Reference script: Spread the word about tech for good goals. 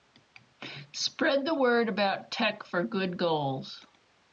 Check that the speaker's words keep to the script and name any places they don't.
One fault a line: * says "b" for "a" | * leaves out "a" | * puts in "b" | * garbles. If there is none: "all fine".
all fine